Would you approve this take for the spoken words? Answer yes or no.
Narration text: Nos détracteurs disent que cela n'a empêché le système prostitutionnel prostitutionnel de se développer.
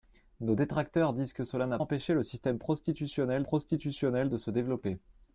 yes